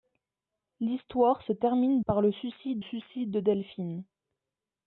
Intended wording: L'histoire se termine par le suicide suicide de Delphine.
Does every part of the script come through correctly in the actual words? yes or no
yes